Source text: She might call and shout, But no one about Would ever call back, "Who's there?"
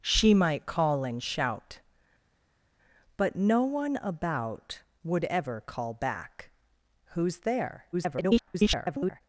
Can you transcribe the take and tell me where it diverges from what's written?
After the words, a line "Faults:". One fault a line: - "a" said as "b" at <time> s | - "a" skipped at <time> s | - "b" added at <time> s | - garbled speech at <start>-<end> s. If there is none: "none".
She might call and shout, But no one about Would ever call back, "Who's there?" [garbled]
Faults:
- garbled speech at 7.9-9.2 s